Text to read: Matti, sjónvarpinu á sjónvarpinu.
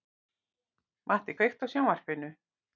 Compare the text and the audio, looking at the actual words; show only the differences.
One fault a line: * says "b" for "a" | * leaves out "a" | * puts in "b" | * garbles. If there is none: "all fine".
* says "kveiktu" for "sjónvarpinu"